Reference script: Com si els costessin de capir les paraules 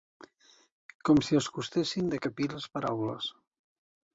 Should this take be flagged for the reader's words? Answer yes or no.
no